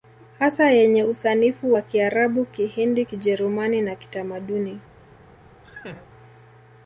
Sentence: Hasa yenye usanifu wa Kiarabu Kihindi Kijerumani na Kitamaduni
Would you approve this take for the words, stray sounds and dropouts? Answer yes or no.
no